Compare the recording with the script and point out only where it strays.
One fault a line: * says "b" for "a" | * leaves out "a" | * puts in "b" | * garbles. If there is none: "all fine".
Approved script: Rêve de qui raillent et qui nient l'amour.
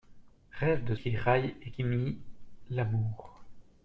all fine